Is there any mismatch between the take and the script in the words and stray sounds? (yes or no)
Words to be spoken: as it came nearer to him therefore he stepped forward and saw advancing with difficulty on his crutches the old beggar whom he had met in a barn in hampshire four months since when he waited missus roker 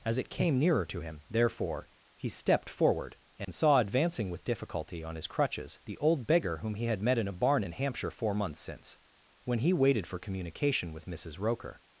yes